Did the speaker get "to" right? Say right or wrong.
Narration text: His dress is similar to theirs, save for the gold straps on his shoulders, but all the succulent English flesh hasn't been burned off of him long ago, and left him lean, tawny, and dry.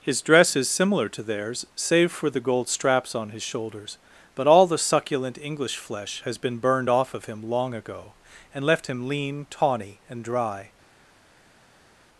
right